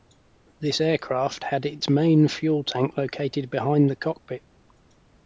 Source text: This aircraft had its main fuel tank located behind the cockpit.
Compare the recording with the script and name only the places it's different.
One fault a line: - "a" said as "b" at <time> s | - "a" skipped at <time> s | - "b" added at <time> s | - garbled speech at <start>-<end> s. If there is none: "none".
none